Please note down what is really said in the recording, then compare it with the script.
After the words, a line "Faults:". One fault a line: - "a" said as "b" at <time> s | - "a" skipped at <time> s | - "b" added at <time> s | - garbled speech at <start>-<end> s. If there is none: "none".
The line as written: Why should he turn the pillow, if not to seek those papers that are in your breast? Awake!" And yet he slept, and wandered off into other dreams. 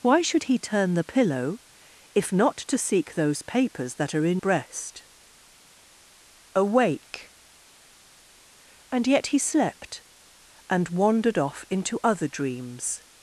Why should he turn the pillow, if not to seek those papers that are in breast? Awake!" And yet he slept, and wandered off into other dreams.
Faults:
- "your" skipped at 4.4 s